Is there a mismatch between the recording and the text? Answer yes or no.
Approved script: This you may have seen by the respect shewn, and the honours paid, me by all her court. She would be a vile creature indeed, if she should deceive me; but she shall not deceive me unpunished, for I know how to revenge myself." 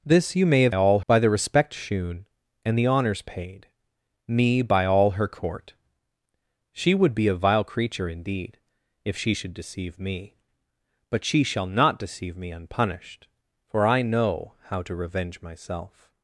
yes